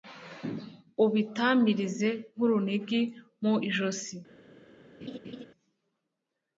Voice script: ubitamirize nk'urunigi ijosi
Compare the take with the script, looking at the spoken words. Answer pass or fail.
fail